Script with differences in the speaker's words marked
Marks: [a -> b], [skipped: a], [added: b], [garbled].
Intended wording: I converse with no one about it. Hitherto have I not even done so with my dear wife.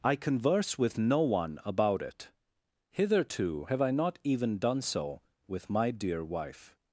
I converse with no one about it. Hitherto have I not even done so with my dear wife.